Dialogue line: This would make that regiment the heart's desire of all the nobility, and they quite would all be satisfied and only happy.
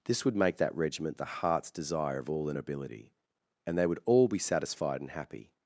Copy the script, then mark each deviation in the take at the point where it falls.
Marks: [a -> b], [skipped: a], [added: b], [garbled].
This would make that regiment the heart's desire of all the nobility, and they [skipped: quite] would all be satisfied and [skipped: only] happy.